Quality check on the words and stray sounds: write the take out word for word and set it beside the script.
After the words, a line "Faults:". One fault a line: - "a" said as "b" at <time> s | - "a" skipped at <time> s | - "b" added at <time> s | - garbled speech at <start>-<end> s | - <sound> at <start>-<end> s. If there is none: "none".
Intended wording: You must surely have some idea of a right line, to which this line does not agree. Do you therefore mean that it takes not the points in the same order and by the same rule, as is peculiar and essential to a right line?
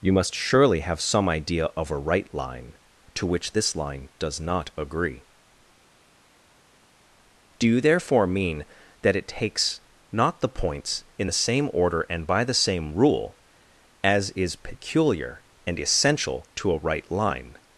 You must surely have some idea of a right line, to which this line does not agree. Do you therefore mean that it takes not the points in the same order and by the same rule, as is peculiar and essential to a right line?
Faults:
none